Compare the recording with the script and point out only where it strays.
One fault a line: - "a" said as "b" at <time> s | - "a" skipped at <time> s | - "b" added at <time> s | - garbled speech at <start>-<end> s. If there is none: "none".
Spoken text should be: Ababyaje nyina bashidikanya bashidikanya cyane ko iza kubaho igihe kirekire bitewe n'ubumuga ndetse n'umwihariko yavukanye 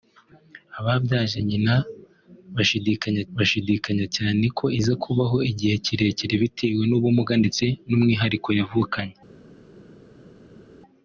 none